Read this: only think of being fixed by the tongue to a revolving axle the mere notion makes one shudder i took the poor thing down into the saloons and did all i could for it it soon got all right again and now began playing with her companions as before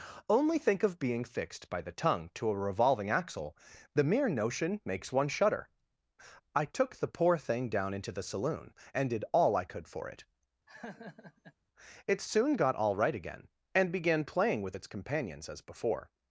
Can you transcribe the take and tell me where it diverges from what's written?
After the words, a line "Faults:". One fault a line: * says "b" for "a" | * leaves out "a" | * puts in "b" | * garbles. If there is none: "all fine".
only think of being fixed by the tongue to a revolving axle the mere notion makes one shudder i took the poor thing down into the saloon and did all i could for it it soon got all right again and began playing with its companions as before
Faults:
* says "saloon" for "saloons"
* leaves out "now"
* says "its" for "her"